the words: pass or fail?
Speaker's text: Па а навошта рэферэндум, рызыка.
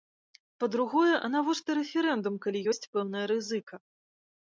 fail